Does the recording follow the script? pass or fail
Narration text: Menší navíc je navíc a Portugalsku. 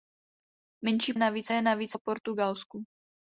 pass